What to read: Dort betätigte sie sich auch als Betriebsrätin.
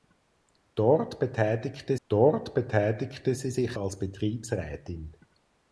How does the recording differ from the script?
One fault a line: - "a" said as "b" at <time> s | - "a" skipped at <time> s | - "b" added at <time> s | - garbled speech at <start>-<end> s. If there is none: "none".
- "dort betätigte" added at 2.1 s
- "auch" skipped at 3.8 s